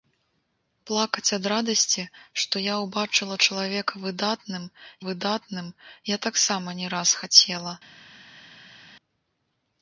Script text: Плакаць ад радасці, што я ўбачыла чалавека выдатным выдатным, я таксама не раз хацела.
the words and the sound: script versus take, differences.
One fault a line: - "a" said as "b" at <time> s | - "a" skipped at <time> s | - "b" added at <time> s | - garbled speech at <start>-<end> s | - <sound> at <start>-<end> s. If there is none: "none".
none